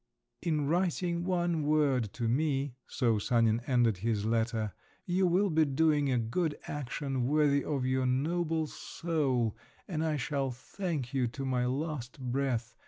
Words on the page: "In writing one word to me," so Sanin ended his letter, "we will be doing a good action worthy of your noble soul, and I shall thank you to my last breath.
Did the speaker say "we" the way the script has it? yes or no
no